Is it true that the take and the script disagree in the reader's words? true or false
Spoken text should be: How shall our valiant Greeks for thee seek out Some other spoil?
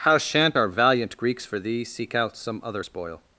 true